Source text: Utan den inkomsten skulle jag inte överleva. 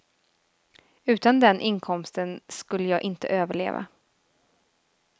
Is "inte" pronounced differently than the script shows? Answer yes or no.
no